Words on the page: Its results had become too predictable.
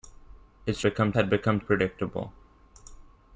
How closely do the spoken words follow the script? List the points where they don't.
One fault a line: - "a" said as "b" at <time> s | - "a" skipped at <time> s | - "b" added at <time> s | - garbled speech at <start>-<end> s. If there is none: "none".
- "results" said as "become" at 0.8 s
- "too" skipped at 1.6 s